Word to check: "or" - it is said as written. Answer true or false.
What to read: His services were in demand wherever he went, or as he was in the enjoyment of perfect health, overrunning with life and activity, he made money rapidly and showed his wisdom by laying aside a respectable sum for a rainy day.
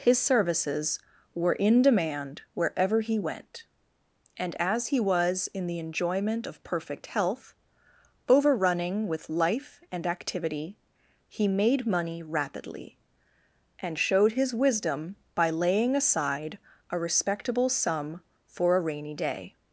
false